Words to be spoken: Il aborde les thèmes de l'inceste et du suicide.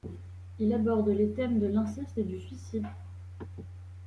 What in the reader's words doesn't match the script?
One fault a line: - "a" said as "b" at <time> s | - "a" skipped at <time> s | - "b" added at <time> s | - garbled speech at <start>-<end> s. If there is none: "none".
none